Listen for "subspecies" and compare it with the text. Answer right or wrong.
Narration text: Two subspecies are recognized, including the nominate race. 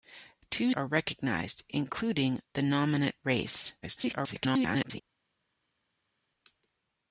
wrong